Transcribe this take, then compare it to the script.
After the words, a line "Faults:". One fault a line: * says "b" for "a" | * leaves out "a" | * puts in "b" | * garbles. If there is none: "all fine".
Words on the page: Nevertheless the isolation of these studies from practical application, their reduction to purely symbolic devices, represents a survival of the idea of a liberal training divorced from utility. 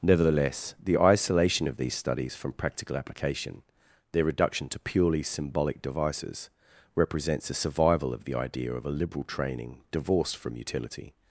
Nevertheless the isolation of these studies from practical application, their reduction to purely symbolic devices, represents a survival of the idea of a liberal training divorced from utility.
Faults:
all fine